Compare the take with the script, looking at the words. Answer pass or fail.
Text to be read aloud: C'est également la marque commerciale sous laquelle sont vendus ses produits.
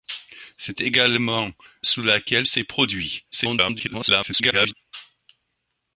fail